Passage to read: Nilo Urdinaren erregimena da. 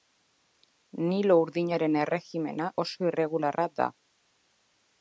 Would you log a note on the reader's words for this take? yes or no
yes